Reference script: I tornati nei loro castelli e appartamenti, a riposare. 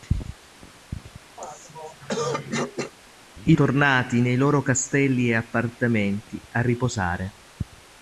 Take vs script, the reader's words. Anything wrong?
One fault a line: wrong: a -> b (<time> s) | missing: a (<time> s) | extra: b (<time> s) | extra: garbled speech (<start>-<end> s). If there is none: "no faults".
no faults